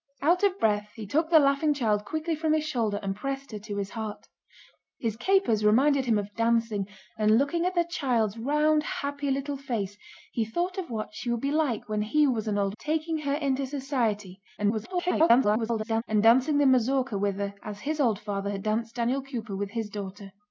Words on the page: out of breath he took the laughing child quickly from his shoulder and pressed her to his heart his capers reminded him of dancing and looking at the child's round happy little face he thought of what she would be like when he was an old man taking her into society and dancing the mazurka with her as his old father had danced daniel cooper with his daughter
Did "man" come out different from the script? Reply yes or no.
yes